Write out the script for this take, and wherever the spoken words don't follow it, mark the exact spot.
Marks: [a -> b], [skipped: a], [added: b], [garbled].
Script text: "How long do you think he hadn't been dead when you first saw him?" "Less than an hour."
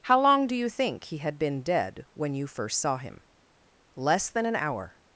"How long do you think he [hadn't -> had] been dead when you first saw him?" "Less than an hour."